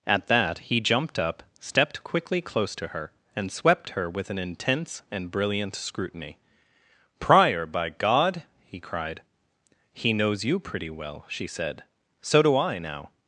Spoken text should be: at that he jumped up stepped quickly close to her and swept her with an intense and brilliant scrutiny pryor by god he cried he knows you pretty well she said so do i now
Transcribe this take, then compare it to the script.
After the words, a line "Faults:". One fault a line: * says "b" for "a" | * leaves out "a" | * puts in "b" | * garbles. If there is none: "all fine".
at that he jumped up stepped quickly close to her and swept her with an intense and brilliant scrutiny pryor by god he cried he knows you pretty well she said so do i now
Faults:
all fine